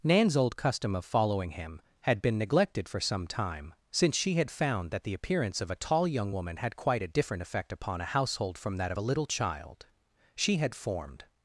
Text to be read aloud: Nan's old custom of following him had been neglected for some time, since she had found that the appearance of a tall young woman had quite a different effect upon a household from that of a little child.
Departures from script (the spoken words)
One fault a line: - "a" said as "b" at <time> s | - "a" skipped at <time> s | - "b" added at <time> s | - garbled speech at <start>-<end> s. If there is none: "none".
- "She had formed" added at 10.4 s